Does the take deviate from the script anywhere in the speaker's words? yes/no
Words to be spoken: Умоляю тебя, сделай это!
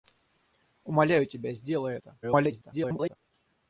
yes